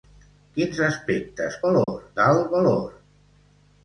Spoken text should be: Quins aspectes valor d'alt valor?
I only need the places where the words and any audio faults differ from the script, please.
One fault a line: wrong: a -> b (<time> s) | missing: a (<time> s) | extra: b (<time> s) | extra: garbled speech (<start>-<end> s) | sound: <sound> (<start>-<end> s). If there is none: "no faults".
sound: dropout (1.8-1.9 s)